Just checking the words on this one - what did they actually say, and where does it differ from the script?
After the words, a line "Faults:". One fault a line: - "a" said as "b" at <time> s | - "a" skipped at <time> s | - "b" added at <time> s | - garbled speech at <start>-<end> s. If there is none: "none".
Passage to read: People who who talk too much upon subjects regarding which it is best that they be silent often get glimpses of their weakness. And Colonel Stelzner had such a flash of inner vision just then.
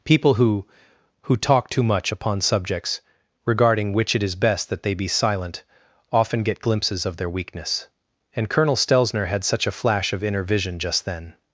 People who who talk too much upon subjects regarding which it is best that they be silent often get glimpses of their weakness. And Colonel Stelzner had such a flash of inner vision just then.
Faults:
none